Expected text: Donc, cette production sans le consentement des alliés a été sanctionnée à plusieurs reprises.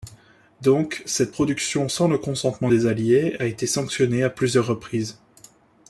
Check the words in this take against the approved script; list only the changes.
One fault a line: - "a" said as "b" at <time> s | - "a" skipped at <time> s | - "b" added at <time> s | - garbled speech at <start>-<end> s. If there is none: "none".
none